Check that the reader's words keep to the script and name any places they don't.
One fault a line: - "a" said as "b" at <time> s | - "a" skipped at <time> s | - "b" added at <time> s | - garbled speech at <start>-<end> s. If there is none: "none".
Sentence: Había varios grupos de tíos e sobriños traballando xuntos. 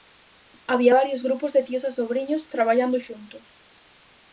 none